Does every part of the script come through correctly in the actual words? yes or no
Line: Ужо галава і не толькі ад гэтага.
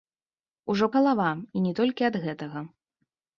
yes